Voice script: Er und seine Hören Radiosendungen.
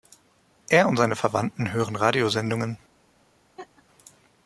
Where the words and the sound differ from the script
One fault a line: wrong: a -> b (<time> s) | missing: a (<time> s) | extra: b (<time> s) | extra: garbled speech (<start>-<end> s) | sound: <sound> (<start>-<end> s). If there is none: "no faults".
extra: Verwandten (1.1 s)
sound: laugh (3.6-3.8 s)